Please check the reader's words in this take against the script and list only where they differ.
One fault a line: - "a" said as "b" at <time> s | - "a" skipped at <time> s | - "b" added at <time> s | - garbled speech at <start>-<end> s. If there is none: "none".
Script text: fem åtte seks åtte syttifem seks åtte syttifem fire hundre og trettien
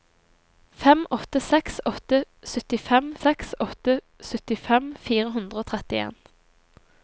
none